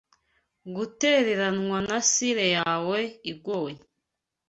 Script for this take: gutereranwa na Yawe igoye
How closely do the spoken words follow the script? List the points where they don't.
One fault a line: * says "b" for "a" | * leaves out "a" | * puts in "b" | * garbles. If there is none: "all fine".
* puts in "Sire"